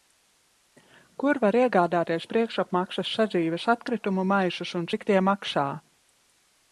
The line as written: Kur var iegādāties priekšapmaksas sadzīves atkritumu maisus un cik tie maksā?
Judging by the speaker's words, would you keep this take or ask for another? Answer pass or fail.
pass